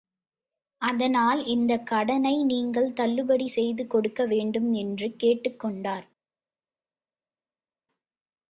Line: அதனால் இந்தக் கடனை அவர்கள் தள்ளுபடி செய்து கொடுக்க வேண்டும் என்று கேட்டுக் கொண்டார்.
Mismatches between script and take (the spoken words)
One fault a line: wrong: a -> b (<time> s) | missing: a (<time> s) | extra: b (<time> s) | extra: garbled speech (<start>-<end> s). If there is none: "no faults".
wrong: அவர்கள் -> நீங்கள் (2.4 s)